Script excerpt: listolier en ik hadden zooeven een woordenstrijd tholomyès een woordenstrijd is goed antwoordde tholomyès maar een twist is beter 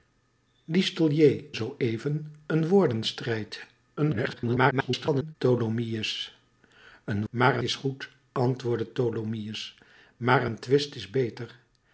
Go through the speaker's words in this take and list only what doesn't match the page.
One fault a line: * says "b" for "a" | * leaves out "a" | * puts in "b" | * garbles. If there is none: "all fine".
* leaves out "en ik hadden"
* garbles
* says "maar" for "woordenstrijd"